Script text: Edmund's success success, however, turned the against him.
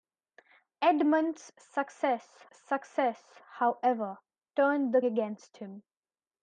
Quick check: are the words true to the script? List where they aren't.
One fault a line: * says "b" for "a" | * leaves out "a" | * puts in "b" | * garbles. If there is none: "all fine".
all fine